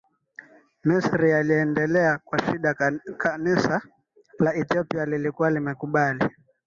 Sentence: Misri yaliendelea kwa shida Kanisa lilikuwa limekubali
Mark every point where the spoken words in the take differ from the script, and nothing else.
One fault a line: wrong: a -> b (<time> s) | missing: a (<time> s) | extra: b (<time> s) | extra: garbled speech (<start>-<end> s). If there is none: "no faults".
extra: la Ethiopia (4.4 s)